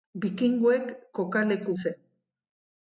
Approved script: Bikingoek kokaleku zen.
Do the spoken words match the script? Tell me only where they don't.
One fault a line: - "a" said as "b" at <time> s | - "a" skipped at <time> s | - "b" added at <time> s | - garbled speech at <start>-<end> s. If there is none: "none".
none